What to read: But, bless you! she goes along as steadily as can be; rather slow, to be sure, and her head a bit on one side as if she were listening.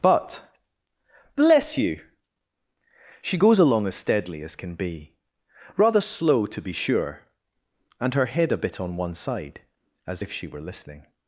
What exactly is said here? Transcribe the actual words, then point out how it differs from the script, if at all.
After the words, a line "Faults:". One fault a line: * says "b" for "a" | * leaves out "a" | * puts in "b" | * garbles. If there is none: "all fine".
But, bless you! she goes along as steadily as can be; rather slow, to be sure, and her head a bit on one side as if she were listening.
Faults:
all fine